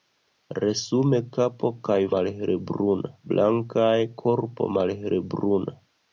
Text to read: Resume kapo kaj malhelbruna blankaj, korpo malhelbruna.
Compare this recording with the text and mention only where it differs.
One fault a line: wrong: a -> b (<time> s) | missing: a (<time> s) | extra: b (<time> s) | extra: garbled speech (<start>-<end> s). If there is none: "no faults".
no faults